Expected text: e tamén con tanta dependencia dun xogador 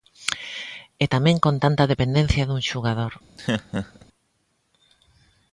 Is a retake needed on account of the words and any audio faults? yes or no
yes